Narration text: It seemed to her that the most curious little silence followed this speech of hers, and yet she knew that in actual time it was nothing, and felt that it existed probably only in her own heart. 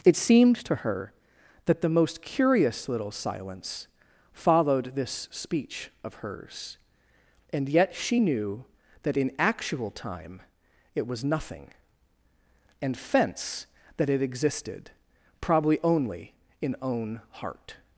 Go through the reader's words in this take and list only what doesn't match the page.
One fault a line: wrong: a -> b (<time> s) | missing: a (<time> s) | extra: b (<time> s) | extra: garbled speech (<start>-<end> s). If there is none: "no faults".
wrong: felt -> fence (13.0 s)
missing: her (16.7 s)